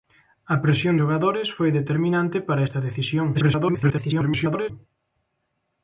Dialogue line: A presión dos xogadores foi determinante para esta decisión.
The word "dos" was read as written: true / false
false